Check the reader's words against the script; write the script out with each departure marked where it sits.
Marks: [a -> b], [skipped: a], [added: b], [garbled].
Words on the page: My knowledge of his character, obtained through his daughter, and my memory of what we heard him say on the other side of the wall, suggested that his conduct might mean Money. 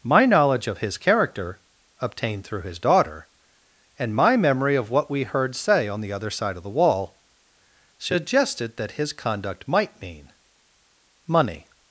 My knowledge of his character, obtained through his daughter, and my memory of what we heard [skipped: him] say on the other side of the wall, suggested that his conduct might mean Money.